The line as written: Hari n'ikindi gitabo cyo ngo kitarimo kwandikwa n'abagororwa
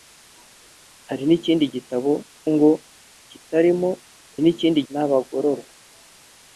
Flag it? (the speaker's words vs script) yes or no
yes